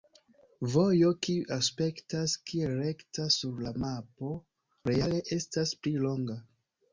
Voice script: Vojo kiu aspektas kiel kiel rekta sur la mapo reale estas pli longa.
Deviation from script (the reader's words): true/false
true